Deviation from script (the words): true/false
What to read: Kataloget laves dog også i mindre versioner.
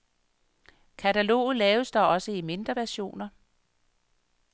false